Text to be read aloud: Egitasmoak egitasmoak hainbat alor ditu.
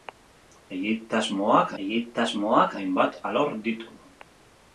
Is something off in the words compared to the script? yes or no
no